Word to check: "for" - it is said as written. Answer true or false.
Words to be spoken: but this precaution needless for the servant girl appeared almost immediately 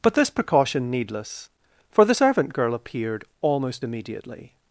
true